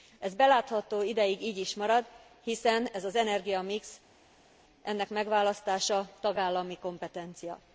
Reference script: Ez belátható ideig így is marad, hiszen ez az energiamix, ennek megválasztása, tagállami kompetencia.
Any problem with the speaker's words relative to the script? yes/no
no